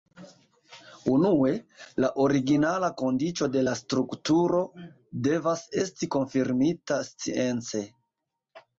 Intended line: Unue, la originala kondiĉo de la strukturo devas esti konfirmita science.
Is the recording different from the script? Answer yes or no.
no